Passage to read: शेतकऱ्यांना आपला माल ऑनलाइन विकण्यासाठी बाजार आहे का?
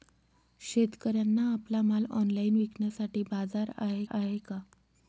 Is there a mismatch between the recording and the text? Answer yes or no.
yes